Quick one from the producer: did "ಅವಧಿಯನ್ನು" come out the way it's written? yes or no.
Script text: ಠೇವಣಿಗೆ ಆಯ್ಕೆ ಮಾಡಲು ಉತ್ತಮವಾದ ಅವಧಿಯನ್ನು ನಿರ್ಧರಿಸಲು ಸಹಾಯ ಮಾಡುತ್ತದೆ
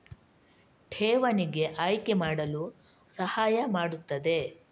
no